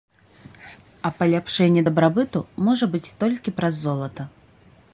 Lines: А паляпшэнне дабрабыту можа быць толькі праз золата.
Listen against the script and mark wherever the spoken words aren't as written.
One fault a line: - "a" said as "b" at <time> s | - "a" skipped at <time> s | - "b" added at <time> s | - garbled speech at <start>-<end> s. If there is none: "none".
none